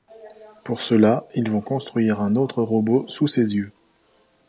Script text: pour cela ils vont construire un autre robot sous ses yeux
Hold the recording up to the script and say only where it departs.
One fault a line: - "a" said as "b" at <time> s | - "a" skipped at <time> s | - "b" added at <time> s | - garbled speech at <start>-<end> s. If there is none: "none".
none